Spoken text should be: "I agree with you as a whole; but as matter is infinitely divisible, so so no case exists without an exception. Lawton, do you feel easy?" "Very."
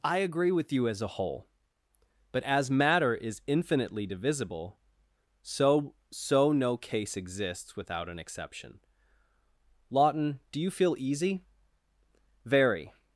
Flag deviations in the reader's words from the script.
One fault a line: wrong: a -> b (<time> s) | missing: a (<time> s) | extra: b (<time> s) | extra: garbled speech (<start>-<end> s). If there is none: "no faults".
no faults